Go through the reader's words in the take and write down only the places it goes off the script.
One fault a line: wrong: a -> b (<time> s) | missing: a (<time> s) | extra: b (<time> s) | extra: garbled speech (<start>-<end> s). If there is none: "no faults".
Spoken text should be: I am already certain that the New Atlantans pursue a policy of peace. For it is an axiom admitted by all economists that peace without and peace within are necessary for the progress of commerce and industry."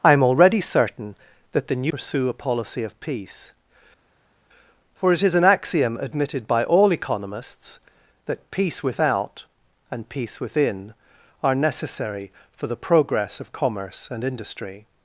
missing: Atlantans (1.9 s)